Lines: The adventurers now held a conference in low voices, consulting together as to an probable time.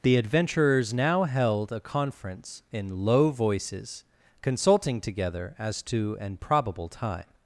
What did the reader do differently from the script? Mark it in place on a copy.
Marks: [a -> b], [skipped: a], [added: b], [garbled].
The adventurers now held a conference in low voices, consulting together as to an probable time.